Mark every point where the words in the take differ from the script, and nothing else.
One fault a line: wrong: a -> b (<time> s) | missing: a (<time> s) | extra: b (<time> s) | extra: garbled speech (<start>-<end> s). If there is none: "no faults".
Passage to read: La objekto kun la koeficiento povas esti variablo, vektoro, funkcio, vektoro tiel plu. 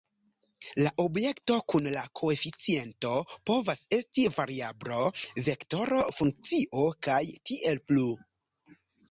wrong: vektoro -> kaj (7.1 s)